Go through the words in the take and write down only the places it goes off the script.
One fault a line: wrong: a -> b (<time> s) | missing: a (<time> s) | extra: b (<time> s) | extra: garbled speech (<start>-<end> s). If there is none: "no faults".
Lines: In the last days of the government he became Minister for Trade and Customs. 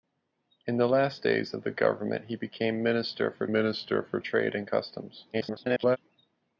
extra: Minister for (3.5 s)
extra: garbled speech (5.3-6.0 s)